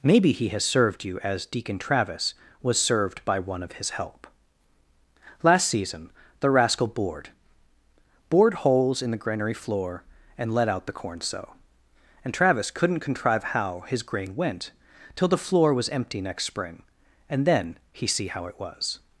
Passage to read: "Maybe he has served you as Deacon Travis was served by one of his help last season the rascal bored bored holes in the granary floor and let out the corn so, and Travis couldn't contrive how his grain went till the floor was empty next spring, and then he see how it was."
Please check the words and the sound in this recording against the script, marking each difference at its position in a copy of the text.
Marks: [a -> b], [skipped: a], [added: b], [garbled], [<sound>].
"Maybe he has served you as Deacon Travis was served by one of his help last season the rascal bored bored holes in the granary floor and let out the corn so, and Travis couldn't contrive how his grain went till the floor was empty next spring, and then he see how it was."